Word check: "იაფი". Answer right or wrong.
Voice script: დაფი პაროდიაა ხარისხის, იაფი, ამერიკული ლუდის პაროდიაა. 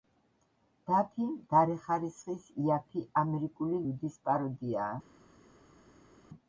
right